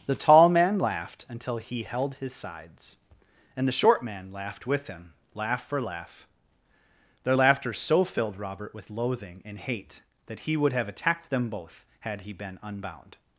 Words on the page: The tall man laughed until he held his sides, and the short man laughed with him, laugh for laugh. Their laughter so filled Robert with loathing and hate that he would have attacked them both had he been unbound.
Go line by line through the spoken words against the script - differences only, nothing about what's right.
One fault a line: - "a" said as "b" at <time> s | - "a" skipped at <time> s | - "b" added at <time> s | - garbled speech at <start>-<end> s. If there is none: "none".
none